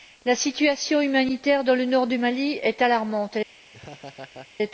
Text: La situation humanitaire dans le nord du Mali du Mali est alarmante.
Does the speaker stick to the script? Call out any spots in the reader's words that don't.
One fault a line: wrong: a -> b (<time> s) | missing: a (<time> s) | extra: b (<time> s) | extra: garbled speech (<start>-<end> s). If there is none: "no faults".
missing: du Mali (2.6 s)